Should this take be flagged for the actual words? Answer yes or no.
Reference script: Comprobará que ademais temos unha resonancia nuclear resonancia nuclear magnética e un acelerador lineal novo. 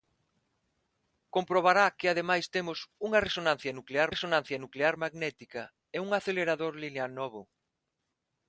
no